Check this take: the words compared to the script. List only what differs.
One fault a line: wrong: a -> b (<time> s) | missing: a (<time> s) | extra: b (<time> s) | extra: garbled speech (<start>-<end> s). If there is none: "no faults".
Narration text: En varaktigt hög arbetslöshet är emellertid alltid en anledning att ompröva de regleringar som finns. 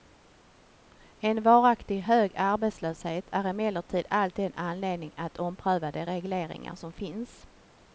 no faults